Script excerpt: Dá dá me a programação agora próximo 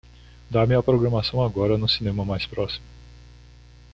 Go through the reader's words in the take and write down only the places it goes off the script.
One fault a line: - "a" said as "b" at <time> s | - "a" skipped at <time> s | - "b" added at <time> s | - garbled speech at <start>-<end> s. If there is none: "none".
- "dá" skipped at 0.7 s
- "no cinema mais" added at 1.8 s